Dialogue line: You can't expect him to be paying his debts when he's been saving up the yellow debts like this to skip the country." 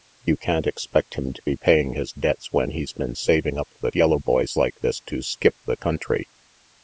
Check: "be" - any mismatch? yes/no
no